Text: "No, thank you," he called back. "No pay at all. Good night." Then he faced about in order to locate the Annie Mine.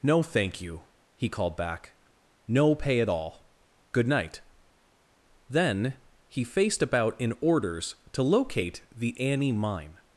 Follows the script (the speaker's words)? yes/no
no